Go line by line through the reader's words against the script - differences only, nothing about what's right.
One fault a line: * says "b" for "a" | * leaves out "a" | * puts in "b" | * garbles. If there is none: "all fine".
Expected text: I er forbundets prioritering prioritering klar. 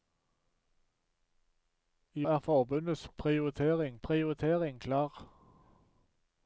all fine